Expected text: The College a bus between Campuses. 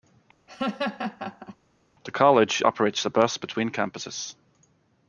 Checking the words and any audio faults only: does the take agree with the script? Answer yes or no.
no